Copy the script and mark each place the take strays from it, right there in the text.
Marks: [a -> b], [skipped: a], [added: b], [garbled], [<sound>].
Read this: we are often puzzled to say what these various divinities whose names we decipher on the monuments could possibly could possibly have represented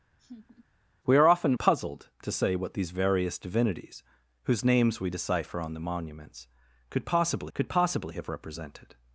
[laugh] we are often puzzled to say what these various divinities whose names we decipher on the monuments could possibly could possibly have represented